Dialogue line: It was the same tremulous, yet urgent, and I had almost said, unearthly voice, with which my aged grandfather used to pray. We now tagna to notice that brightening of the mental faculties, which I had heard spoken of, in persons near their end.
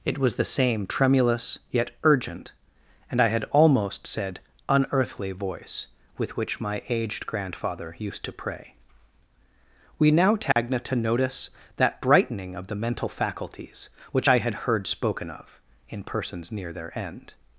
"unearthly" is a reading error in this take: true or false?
false